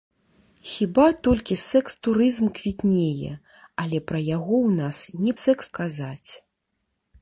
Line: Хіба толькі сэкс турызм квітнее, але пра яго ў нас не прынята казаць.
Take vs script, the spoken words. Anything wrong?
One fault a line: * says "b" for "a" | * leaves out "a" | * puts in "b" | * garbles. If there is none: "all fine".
* says "сэкс" for "прынята"